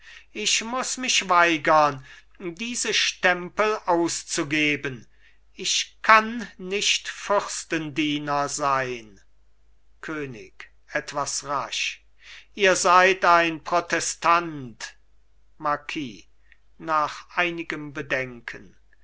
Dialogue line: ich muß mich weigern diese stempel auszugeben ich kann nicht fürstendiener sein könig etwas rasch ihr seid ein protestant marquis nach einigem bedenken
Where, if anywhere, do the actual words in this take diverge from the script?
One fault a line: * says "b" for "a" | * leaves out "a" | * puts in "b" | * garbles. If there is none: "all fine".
all fine